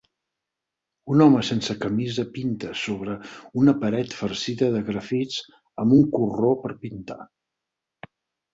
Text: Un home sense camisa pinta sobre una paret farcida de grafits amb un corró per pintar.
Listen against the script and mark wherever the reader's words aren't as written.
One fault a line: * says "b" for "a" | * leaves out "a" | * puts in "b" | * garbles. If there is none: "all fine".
all fine